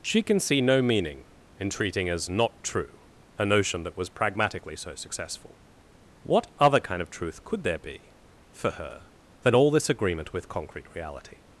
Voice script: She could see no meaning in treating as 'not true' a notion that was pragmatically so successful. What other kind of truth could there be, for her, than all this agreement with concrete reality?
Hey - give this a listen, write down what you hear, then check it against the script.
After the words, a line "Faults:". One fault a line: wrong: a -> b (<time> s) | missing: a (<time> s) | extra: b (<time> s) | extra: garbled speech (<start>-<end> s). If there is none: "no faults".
She can see no meaning in treating as 'not true' a notion that was pragmatically so successful. What other kind of truth could there be, for her, than all this agreement with concrete reality?
Faults:
wrong: could -> can (0.2 s)